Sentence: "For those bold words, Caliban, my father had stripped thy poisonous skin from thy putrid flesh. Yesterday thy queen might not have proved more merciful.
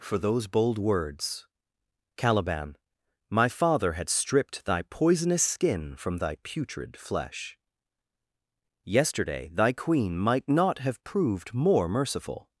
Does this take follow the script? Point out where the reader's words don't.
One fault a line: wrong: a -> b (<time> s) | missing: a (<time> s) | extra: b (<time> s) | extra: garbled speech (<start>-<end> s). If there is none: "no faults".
no faults